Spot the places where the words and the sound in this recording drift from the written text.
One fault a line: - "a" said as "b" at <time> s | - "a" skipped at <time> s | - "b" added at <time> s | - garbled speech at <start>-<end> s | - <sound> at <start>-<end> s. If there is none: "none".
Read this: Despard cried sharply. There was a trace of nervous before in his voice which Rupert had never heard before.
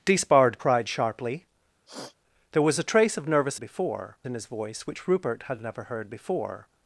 - sniff at 1.9-2.2 s